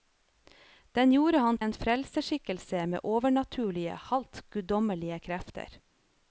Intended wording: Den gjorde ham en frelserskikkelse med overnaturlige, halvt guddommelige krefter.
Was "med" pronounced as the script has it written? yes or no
yes